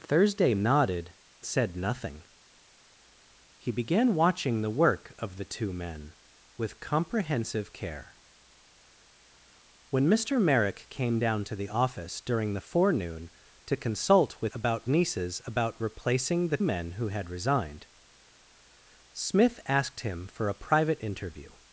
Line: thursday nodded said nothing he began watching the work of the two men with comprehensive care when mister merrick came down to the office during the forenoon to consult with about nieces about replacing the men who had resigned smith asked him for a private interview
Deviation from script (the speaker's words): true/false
false